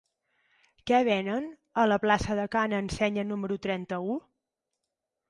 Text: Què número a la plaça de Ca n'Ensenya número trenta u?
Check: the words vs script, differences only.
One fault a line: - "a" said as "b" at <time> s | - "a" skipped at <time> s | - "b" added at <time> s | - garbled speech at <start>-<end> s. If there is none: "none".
- "número" said as "venen" at 1.1 s